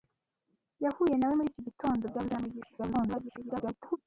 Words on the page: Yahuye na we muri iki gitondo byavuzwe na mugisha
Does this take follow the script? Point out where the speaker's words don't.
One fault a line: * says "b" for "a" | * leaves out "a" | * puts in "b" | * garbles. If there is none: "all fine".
* garbles